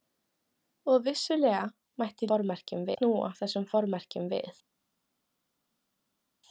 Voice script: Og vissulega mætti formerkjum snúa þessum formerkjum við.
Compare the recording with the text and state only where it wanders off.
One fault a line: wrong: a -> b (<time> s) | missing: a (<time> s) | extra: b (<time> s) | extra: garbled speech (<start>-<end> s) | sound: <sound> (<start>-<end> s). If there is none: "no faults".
no faults